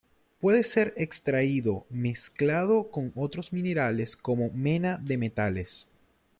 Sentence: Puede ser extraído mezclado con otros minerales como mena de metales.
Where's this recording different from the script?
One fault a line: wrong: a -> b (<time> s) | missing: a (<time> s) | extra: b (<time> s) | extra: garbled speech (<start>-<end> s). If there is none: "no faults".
no faults